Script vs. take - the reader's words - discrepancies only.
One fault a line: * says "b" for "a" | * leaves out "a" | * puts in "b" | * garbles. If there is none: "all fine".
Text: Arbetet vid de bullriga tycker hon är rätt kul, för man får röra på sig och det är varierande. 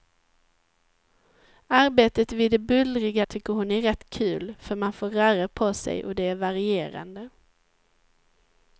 all fine